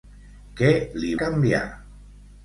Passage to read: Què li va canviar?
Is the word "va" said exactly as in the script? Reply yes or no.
no